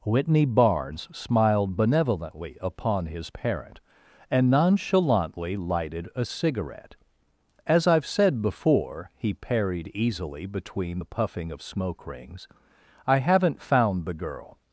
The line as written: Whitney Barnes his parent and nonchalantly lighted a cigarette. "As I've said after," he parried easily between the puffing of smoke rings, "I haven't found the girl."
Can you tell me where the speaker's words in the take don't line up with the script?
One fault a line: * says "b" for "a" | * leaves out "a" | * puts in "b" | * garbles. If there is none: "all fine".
* puts in "smiled benevolently upon"
* says "before" for "after"